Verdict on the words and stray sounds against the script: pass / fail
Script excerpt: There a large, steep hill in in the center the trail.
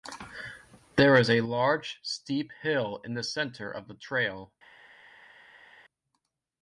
fail